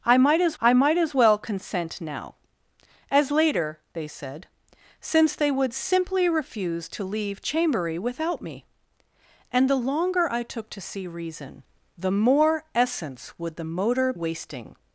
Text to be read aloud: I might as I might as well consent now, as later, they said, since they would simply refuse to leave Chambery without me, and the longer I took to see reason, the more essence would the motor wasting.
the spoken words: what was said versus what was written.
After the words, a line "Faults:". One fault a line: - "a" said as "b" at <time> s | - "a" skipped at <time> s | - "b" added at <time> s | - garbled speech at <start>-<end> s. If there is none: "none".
I might as I might as well consent now, as later, they said, since they would simply refuse to leave Chambery without me, and the longer I took to see reason, the more essence would the motor wasting.
Faults:
none